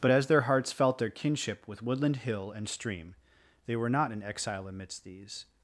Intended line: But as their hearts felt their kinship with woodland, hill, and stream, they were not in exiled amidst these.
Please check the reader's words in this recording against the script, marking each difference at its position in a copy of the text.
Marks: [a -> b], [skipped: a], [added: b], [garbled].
But as their hearts felt their kinship with woodland, hill, and stream, they were not in [exiled -> exile] amidst these.